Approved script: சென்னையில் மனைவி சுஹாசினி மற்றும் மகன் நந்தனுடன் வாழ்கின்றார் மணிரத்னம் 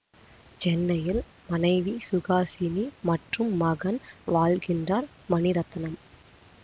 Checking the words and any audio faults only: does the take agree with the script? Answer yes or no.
no